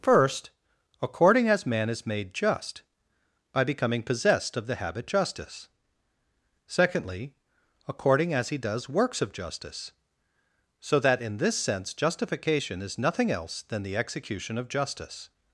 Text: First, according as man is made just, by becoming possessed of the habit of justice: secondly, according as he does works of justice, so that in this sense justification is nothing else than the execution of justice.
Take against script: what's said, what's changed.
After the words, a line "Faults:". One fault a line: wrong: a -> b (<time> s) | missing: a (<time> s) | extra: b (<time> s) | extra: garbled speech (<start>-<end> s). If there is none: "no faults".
First, according as man is made just, by becoming possessed of the habit justice: secondly, according as he does works of justice, so that in this sense justification is nothing else than the execution of justice.
Faults:
missing: of (5.1 s)